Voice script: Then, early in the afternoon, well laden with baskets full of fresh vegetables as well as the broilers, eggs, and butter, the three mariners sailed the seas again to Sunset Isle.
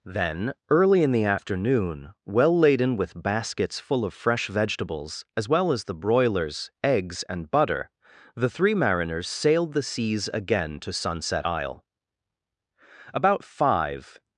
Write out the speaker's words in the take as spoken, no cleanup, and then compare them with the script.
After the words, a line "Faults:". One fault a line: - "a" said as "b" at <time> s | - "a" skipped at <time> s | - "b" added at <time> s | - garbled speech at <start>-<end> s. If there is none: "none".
Then, early in the afternoon, well laden with baskets full of fresh vegetables as well as the broilers, eggs, and butter, the three mariners sailed the seas again to Sunset Isle. About five
Faults:
- "About five" added at 13.1 s